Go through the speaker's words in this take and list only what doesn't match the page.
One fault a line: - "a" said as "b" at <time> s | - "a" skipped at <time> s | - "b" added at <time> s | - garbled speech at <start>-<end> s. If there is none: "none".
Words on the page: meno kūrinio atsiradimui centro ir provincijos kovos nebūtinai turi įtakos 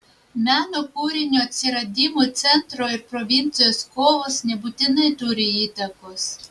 none